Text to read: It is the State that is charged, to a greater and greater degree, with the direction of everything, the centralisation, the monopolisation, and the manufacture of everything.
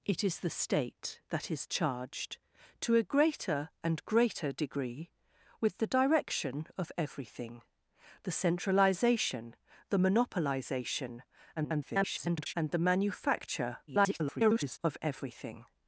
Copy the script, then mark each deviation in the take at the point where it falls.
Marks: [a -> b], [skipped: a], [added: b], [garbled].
It is the State that is charged, to a greater and greater degree, with the direction of everything, the centralisation, the monopolisation, [garbled] and the manufacture [garbled] of everything.